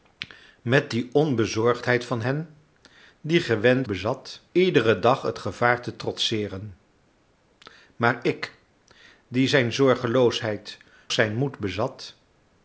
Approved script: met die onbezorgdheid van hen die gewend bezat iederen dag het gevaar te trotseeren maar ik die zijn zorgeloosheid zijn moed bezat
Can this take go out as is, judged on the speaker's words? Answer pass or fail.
pass